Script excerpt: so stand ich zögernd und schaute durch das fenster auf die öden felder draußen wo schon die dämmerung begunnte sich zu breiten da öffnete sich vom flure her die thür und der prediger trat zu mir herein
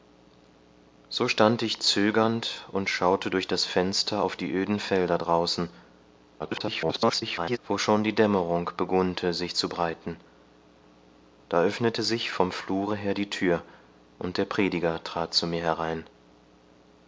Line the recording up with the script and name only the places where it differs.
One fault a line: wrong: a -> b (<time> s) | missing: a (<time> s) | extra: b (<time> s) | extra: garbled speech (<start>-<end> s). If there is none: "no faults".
extra: garbled speech (6.4-7.6 s)